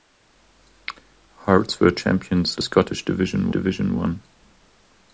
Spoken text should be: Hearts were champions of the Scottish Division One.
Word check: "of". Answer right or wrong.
wrong